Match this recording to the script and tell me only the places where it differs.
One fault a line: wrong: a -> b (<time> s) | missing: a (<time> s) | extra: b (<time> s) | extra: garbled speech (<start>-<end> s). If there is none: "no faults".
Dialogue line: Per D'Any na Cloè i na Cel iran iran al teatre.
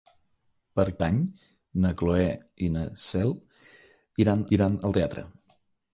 no faults